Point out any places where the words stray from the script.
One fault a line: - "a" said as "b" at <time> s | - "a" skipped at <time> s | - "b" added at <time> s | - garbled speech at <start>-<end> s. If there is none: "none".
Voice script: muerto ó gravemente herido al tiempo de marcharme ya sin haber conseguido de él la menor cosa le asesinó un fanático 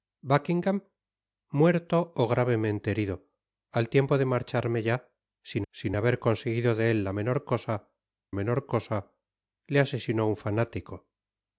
- "sin" added at 5.7 s
- "menor cosa" added at 8.3 s